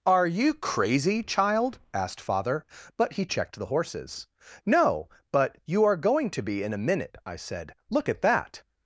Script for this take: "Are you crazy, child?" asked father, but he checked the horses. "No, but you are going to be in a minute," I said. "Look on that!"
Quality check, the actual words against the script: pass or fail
fail